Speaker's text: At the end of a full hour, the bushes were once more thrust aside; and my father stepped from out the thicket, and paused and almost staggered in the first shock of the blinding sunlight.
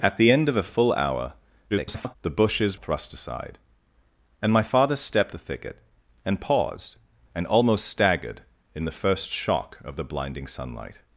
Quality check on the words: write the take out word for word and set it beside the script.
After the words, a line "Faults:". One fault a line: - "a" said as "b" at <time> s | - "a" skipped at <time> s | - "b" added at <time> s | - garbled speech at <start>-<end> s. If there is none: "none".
At the end of a full hour, [garbled] the bushes thrust aside; and my father stepped the thicket, and paused and almost staggered in the first shock of the blinding sunlight.
Faults:
- garbled speech at 1.7-2.2 s
- "were once more" skipped at 2.8 s
- "from out" skipped at 5.3 s